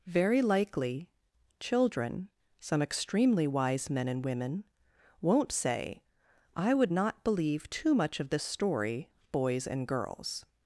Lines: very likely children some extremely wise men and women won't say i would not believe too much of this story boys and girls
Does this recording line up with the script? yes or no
yes